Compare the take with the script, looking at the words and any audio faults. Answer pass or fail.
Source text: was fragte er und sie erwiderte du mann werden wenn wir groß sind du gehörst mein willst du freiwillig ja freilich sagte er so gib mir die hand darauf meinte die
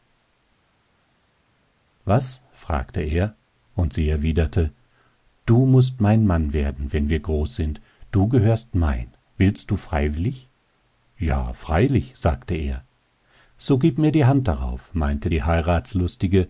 fail